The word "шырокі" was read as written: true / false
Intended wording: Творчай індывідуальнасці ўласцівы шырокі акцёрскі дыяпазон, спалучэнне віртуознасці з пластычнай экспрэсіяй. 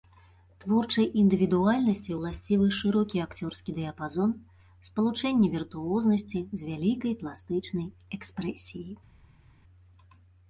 true